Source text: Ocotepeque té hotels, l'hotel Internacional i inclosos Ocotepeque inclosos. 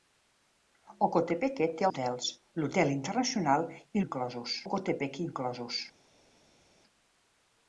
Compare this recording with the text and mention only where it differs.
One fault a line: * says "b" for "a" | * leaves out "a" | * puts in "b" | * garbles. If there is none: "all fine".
all fine